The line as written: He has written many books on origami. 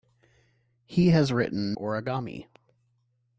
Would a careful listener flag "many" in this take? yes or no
yes